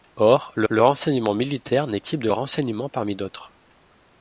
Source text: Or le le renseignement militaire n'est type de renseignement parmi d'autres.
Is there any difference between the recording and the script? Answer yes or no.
no